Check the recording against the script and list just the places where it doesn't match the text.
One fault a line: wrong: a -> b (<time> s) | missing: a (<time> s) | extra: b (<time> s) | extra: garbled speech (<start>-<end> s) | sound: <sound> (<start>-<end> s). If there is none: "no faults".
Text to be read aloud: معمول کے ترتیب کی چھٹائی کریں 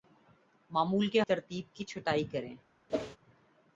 sound: whoosh (2.9-3.2 s)